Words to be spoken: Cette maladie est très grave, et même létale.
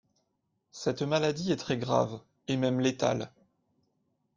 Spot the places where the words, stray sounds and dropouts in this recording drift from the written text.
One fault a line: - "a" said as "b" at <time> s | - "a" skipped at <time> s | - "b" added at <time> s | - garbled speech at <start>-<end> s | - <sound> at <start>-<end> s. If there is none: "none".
none